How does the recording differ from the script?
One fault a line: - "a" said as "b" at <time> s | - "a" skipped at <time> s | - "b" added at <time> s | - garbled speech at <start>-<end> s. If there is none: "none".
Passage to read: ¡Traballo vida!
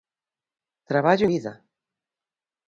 none